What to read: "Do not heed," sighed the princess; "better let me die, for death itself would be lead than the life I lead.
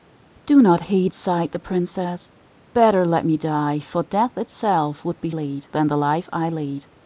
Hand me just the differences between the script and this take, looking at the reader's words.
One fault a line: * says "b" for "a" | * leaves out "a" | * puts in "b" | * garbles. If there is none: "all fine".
all fine